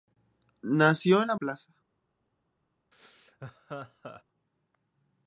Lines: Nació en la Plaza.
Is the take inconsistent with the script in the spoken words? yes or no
no